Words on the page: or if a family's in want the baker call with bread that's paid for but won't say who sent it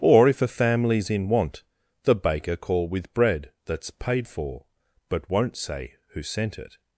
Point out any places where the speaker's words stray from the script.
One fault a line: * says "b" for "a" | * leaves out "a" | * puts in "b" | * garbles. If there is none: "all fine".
all fine